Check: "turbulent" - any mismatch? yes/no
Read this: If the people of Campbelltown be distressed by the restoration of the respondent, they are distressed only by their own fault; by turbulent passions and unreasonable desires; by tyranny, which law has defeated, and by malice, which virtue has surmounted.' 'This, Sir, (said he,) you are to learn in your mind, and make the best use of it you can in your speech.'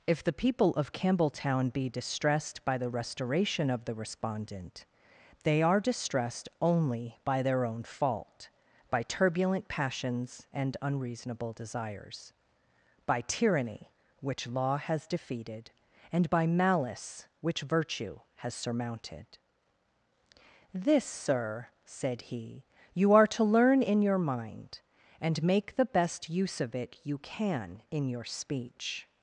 no